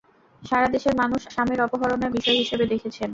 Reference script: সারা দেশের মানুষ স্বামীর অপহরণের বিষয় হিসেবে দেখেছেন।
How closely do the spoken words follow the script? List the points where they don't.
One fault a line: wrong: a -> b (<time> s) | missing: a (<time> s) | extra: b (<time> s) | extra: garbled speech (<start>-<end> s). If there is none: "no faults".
no faults